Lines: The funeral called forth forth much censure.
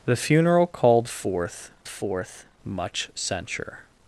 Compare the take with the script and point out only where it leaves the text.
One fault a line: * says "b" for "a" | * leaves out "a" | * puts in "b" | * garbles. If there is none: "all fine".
all fine